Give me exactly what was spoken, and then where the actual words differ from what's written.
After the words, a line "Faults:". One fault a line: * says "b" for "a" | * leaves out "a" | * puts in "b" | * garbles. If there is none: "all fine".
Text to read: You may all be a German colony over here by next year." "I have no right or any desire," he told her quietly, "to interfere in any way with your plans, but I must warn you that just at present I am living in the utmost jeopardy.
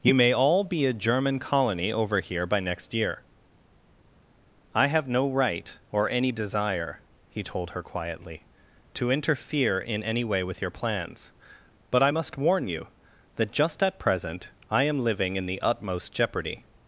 You may all be a German colony over here by next year." "I have no right or any desire," he told her quietly, "to interfere in any way with your plans, but I must warn you that just at present I am living in the utmost jeopardy.
Faults:
all fine